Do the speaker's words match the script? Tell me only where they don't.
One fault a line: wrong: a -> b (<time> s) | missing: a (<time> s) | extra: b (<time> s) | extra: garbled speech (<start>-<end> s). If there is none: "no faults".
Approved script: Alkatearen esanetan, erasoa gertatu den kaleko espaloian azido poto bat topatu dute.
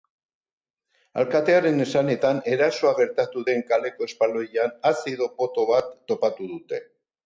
no faults